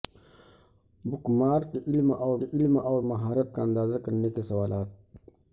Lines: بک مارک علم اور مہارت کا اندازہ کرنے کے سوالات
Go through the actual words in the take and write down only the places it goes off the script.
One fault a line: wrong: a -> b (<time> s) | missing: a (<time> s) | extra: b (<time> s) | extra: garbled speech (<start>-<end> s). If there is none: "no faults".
extra: علم اور (2.5 s)